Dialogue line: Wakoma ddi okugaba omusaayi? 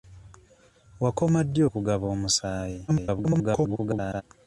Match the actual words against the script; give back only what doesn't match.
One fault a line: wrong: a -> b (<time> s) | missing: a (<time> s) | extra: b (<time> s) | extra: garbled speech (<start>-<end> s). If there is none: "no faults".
extra: garbled speech (2.9-4.2 s)